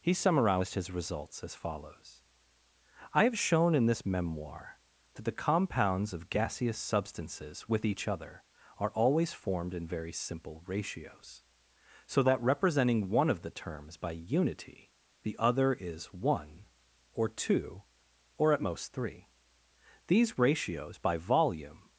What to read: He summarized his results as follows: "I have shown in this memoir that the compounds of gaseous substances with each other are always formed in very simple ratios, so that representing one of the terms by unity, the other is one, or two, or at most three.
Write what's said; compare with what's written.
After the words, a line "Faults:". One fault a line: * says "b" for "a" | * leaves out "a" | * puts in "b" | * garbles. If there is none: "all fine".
He summarized his results as follows: "I have shown in this memoir that the compounds of gaseous substances with each other are always formed in very simple ratios, so that representing one of the terms by unity, the other is one, or two, or at most three. These ratios by volume
Faults:
* puts in "These ratios by volume"